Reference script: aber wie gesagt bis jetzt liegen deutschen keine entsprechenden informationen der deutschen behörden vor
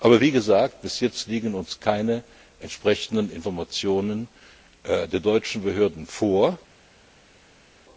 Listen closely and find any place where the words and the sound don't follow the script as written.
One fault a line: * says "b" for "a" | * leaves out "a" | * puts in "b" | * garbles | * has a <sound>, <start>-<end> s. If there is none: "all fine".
* says "uns" for "deutschen"